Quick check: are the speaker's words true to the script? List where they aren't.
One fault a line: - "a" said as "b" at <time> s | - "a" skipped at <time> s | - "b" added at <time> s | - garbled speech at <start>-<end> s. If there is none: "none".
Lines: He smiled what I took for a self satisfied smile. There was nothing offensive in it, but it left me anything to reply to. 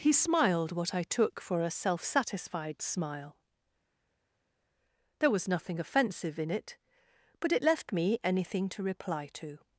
none